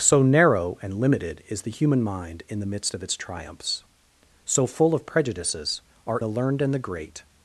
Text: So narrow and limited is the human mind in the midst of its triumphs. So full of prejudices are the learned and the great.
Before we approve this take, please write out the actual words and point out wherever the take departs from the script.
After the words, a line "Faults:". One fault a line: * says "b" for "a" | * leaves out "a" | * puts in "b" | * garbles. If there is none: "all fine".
So narrow and limited is the human mind in the midst of its triumphs. So full of prejudices are the learned and the great.
Faults:
all fine